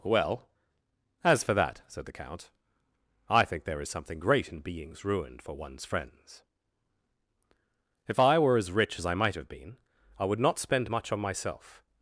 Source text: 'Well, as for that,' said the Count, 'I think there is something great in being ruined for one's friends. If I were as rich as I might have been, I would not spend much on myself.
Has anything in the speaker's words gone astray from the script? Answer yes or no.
yes